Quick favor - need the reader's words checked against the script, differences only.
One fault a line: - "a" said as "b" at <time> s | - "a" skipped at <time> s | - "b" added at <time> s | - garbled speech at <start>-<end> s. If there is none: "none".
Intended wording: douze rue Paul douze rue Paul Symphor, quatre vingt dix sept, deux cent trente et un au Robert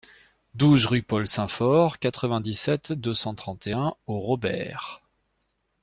- "douze rue Paul" skipped at 1.3 s